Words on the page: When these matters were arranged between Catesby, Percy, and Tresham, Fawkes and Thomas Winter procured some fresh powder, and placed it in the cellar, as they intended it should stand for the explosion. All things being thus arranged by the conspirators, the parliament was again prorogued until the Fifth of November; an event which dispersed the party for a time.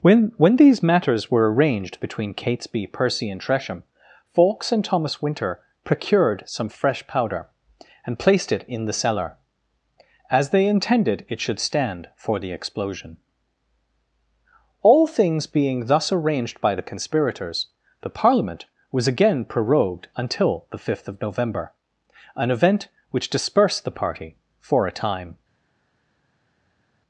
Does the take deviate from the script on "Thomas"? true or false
false